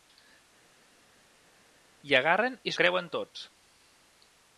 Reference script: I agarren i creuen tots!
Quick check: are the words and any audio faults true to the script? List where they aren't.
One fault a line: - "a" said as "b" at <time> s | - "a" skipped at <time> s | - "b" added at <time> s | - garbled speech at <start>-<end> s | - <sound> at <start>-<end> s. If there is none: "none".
none